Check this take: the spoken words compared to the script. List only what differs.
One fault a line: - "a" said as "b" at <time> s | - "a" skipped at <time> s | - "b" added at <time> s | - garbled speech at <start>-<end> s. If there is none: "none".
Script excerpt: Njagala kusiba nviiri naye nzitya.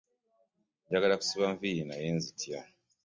none